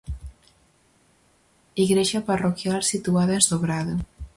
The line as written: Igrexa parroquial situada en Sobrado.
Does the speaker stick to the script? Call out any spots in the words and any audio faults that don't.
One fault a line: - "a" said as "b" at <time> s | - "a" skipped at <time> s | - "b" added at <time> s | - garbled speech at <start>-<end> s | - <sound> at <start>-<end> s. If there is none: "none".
none